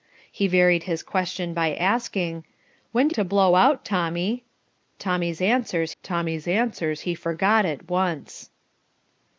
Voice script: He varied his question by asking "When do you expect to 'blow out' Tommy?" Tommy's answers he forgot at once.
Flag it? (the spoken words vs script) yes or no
yes